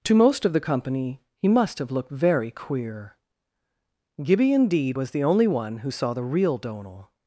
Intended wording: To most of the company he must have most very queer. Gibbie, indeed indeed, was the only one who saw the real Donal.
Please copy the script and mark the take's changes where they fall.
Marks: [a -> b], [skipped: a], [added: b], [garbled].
To most of the company he must have [most -> looked] very queer. Gibbie, indeed [skipped: indeed,] was the only one who saw the real Donal.